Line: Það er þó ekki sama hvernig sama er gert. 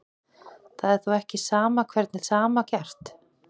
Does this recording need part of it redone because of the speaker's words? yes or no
no